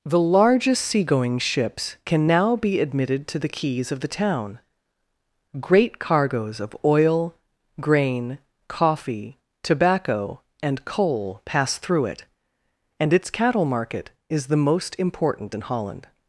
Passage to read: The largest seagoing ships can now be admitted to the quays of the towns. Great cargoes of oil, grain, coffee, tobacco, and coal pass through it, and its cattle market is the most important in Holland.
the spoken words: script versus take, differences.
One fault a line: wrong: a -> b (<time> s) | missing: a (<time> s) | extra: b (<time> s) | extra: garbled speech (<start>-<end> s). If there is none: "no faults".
wrong: towns -> town (4.1 s)